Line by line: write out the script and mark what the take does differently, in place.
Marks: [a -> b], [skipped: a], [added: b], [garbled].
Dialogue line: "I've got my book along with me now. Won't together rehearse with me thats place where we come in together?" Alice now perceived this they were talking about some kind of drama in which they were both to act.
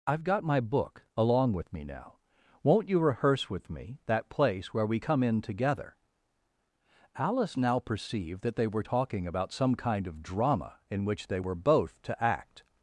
"I've got my book along with me now. Won't [together -> you] rehearse with me [thats -> that] place where we come in together?" Alice now perceived [this -> that] they were talking about some kind of drama in which they were both to act.